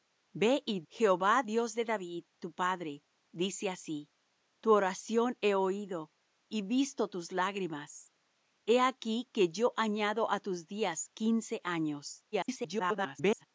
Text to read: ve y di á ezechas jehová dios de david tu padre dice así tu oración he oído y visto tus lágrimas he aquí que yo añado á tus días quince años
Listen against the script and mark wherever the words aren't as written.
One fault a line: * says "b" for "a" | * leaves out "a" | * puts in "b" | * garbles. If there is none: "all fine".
* leaves out "di á ezechas"
* garbles